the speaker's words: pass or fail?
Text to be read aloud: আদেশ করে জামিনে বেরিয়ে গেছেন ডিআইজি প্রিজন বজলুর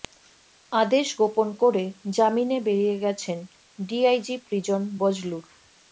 fail